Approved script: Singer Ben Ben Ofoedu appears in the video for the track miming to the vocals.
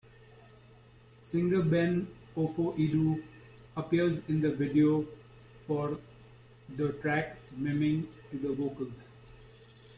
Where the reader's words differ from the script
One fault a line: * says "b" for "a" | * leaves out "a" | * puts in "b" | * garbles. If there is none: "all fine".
* leaves out "Ben"